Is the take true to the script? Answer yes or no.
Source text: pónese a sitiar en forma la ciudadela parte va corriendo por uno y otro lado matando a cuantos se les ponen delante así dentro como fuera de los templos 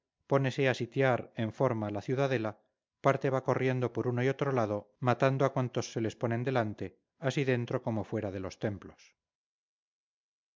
yes